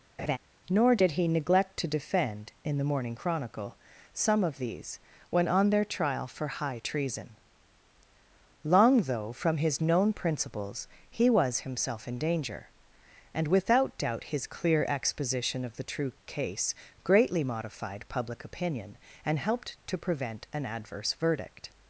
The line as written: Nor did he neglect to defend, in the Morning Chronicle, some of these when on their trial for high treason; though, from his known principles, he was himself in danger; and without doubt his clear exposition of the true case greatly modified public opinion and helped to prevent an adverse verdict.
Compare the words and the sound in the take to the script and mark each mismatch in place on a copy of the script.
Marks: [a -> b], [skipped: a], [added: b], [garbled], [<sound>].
[laugh] Nor did he neglect to defend, in the Morning Chronicle, some of these when on their trial for high treason; [added: long] though, from his known principles, he was himself in danger; and without doubt his clear exposition of the true case greatly modified public opinion and helped to prevent an adverse verdict.